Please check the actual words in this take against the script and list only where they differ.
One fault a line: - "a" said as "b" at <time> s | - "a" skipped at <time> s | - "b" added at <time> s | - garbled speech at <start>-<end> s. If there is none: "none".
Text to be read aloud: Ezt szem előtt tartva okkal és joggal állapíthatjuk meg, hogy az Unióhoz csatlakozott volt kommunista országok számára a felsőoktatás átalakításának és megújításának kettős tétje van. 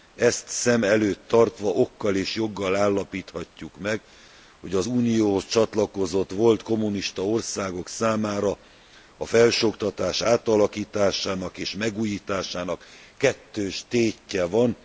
none